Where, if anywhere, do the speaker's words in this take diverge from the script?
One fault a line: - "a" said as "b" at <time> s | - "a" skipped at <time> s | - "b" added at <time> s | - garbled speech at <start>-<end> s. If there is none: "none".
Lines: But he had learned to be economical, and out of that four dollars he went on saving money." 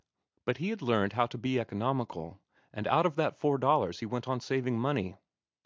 - "how" added at 1.1 s